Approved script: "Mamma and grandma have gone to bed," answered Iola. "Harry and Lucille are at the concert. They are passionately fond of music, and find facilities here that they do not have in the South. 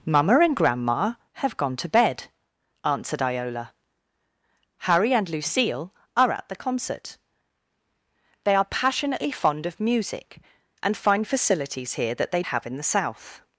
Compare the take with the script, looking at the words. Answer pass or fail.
fail